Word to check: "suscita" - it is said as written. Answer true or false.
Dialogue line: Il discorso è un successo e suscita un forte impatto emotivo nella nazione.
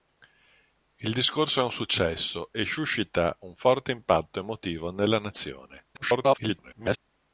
true